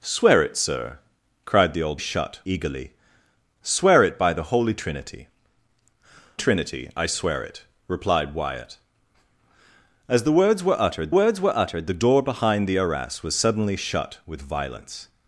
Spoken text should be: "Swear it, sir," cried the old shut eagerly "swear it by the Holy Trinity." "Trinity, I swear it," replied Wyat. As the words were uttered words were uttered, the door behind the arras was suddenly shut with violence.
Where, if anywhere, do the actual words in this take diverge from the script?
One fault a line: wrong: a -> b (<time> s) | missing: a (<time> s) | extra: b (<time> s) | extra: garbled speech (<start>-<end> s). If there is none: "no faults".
no faults